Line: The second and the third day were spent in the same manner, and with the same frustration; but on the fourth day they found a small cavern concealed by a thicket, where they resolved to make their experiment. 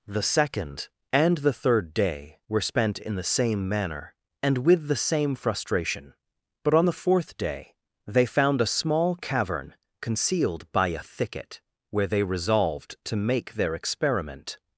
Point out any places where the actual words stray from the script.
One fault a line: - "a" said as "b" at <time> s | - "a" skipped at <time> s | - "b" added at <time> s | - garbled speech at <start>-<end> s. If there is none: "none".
none